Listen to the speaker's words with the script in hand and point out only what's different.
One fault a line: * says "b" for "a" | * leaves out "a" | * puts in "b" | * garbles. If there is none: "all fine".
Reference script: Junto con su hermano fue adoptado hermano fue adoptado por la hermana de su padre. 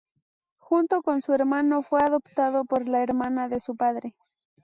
* leaves out "hermano fue adoptado"